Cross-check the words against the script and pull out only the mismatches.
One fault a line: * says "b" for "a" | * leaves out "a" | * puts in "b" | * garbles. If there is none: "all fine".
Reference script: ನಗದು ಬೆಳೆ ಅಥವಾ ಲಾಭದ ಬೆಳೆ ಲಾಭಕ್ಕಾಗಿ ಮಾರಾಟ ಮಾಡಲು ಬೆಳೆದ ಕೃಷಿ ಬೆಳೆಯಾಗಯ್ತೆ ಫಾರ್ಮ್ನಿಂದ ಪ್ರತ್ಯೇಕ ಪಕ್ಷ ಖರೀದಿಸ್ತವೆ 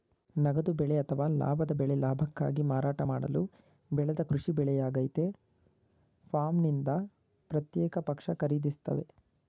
all fine